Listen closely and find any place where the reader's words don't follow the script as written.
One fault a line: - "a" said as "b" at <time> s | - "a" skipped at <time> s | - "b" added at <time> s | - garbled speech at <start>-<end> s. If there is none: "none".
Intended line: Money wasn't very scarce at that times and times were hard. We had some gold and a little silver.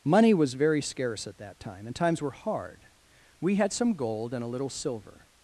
- "wasn't" said as "was" at 0.3 s
- "times" said as "time" at 1.6 s